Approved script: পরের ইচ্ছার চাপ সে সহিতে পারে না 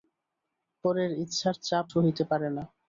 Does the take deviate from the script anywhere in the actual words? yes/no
yes